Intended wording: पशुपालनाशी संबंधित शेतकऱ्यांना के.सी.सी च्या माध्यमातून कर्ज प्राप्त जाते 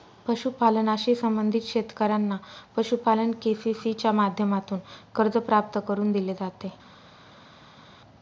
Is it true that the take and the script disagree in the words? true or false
true